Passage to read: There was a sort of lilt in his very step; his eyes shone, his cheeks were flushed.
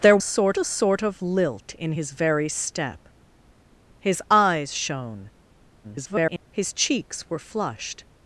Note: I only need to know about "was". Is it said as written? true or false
false